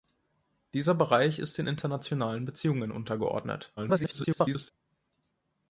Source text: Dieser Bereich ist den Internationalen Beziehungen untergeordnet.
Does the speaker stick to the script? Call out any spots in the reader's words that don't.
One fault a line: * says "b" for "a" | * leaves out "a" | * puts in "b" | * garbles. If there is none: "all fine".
* garbles